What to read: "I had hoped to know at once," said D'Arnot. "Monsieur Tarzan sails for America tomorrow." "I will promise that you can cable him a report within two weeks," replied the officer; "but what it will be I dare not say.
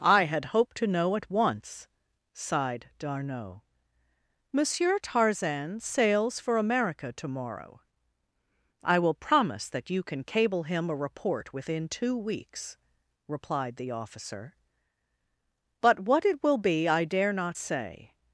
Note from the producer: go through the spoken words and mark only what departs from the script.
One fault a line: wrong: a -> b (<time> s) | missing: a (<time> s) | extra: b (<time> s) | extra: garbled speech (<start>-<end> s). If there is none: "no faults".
wrong: said -> sighed (2.3 s)